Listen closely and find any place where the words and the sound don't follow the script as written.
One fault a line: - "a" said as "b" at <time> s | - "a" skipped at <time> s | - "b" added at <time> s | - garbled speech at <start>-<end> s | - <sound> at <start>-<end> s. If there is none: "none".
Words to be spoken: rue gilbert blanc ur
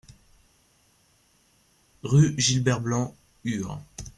none